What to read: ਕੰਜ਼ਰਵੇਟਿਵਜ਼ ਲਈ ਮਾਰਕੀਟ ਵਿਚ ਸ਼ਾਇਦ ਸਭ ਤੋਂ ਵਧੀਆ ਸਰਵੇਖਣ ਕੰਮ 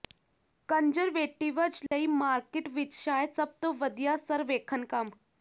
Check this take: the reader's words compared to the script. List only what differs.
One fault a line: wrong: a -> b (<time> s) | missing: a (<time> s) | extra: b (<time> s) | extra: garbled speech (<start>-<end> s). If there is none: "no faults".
no faults